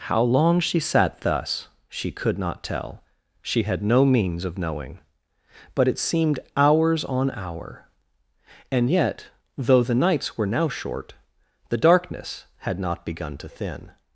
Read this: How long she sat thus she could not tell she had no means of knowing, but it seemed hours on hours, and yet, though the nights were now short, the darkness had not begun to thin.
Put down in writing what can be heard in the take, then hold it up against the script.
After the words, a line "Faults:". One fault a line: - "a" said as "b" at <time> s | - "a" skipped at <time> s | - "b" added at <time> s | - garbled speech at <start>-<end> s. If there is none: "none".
How long she sat thus she could not tell she had no means of knowing, but it seemed hours on hour, and yet, though the nights were now short, the darkness had not begun to thin.
Faults:
- "hours" said as "hour" at 7.3 s